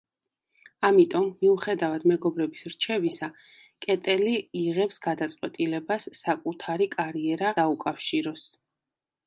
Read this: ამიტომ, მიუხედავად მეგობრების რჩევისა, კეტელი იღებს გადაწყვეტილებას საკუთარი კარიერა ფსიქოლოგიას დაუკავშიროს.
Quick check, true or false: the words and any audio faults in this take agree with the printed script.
false